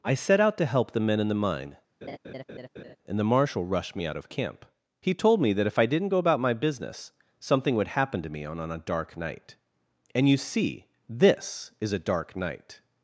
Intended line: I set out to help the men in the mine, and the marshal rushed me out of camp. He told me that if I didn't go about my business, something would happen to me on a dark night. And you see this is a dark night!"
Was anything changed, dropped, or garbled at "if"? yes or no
no